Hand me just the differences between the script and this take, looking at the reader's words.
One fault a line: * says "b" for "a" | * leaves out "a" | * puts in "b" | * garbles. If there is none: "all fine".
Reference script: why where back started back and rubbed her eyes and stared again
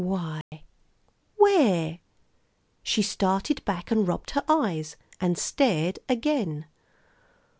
* says "she" for "back"